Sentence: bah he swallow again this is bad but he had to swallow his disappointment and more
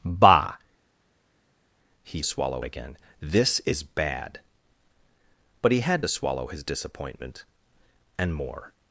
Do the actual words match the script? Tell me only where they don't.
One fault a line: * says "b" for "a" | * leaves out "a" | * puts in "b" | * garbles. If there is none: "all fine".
all fine